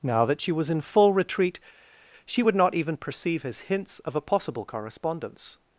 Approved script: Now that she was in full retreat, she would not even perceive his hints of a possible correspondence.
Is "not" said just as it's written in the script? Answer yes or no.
yes